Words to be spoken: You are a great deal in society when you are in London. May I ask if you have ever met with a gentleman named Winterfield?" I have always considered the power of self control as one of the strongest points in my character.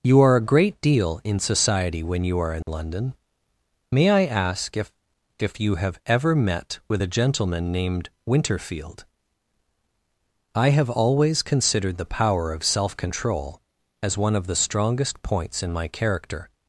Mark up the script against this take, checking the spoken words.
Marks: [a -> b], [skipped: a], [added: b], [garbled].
You are a great deal in society when you are in London. May I ask if [added: if] you have ever met with a gentleman named Winterfield?" I have always considered the power of self control as one of the strongest points in my character.